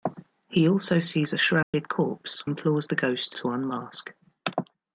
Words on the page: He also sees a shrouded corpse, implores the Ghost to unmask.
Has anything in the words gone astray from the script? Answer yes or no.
no